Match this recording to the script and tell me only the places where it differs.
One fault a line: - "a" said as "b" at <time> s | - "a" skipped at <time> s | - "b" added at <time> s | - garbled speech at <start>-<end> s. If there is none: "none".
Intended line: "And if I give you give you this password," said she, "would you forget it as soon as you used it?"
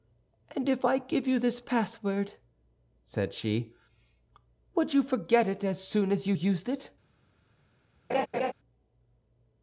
- "give you" skipped at 1.4 s